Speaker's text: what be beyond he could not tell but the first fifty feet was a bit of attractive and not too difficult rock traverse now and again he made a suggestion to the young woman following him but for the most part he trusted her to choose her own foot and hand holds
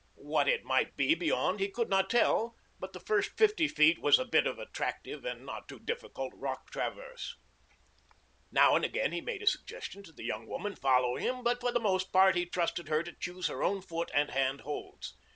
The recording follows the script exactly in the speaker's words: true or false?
false